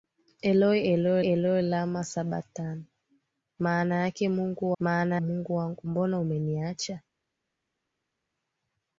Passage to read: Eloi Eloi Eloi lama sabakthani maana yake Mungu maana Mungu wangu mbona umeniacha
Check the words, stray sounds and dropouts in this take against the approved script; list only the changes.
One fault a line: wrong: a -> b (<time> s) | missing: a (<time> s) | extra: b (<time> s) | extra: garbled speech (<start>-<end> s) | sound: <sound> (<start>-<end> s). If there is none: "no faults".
no faults